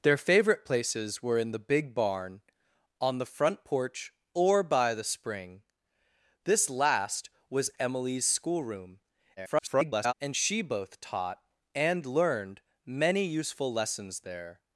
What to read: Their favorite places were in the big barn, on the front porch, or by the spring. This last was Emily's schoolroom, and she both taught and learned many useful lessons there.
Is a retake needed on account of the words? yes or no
yes